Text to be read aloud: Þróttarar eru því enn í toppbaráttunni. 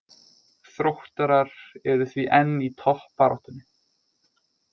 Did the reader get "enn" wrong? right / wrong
right